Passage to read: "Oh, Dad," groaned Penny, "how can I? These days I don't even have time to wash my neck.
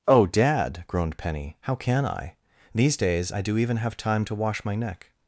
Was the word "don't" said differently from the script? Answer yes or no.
yes